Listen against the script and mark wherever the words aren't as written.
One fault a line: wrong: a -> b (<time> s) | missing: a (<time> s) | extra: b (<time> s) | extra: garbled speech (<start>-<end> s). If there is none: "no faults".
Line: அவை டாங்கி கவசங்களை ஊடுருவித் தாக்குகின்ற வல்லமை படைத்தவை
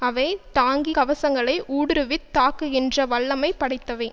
no faults